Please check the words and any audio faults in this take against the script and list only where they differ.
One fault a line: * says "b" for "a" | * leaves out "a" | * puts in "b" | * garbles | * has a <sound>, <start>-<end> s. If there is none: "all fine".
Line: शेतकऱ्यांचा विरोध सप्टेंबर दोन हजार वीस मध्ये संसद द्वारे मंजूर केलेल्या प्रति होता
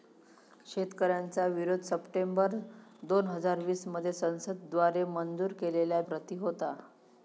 all fine